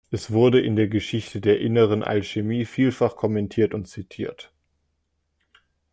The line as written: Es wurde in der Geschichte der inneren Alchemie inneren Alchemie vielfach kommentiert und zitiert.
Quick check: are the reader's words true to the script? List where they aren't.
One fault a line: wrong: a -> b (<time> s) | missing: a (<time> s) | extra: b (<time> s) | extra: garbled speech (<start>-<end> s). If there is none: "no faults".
missing: inneren Alchemie (2.6 s)